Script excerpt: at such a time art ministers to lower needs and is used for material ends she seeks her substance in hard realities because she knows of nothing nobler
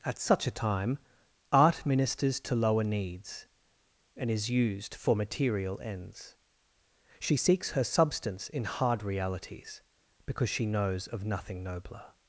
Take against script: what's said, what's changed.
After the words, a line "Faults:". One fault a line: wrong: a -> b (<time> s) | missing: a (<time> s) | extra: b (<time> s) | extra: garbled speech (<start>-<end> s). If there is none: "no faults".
at such a time art ministers to lower needs and is used for material ends she seeks her substance in hard realities because she knows of nothing nobler
Faults:
no faults